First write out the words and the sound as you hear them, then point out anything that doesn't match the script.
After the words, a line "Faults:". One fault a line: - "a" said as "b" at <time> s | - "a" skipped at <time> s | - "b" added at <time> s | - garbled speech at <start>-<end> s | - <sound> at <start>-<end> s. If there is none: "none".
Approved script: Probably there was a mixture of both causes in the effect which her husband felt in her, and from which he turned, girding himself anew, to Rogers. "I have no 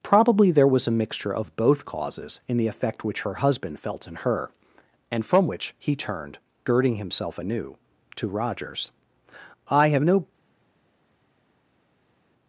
Probably there was a mixture of both causes in the effect which her husband felt in her, and from which he turned, girding himself anew, to Rogers. "I have no
Faults:
none